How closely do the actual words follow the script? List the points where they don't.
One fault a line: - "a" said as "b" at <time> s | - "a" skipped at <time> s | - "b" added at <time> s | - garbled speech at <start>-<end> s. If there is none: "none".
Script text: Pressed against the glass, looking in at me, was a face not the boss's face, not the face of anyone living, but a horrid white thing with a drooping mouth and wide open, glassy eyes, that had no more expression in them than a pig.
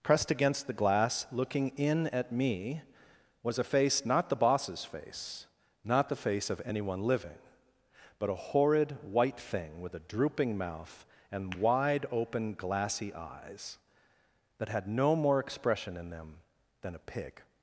none